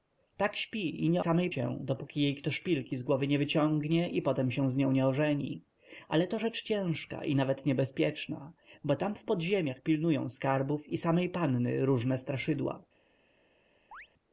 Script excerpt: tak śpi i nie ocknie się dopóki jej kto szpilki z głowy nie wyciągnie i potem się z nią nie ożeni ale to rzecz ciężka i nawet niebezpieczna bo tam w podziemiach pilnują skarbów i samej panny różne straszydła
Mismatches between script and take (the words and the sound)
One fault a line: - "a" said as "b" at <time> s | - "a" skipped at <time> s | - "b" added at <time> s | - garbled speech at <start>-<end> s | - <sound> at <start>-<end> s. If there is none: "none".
- "ocknie" said as "samej" at 1.2 s
- chirp at 13.9-14.1 s